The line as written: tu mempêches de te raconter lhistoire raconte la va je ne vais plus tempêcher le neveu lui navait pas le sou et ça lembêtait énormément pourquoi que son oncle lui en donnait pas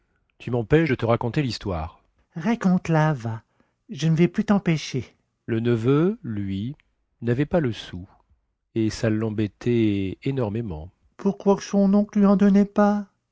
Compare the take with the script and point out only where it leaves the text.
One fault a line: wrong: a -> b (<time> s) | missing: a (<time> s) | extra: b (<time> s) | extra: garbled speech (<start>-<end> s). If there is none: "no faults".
no faults